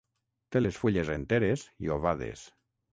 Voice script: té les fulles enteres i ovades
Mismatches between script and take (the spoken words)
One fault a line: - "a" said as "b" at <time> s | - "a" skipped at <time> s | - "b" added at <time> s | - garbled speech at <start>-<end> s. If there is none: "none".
none